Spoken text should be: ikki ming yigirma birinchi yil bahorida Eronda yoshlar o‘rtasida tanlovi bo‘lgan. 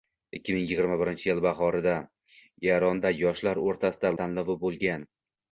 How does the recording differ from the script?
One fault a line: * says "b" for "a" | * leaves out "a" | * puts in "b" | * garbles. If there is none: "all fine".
all fine